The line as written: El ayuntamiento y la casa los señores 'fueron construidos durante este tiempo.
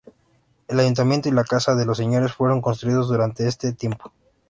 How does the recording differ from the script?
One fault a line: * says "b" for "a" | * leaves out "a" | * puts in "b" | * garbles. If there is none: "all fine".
* puts in "de"